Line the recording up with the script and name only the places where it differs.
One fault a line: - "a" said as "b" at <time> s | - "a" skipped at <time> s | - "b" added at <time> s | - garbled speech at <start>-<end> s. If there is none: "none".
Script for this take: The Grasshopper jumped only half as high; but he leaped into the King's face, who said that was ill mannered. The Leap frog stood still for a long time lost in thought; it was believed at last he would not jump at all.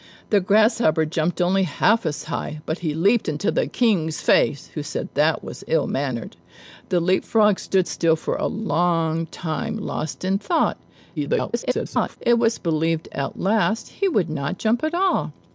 - garbled speech at 11.2-12.2 s